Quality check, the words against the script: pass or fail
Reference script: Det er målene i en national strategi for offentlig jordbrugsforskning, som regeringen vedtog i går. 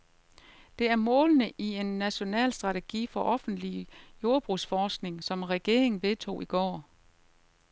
pass